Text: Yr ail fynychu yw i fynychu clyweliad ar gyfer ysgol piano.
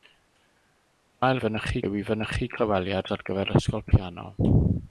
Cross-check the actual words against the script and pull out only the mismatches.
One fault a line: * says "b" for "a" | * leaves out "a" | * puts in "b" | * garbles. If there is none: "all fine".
all fine